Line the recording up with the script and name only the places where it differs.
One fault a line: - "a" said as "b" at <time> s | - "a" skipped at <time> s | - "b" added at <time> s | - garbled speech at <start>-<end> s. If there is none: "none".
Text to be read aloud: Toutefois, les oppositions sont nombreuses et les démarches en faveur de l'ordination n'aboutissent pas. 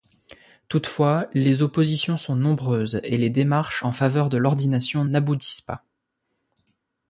none